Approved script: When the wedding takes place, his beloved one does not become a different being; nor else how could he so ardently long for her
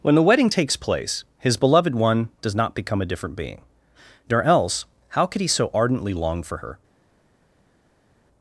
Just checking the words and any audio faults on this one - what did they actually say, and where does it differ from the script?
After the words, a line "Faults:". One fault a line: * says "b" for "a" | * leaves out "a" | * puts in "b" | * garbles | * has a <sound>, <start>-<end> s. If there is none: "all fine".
When the wedding takes place, his beloved one does not become a different being; nor else how could he so ardently long for her
Faults:
all fine